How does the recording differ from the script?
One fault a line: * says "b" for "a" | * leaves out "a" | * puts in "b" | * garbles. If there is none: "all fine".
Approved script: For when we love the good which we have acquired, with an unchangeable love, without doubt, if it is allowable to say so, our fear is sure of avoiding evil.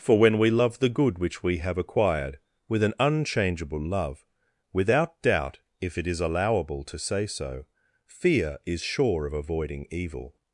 * leaves out "our"